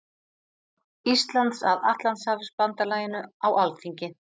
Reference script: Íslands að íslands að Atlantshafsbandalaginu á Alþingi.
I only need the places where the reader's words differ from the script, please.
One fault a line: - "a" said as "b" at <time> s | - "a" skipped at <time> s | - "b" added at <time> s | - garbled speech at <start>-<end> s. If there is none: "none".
- "íslands að" skipped at 1.9 s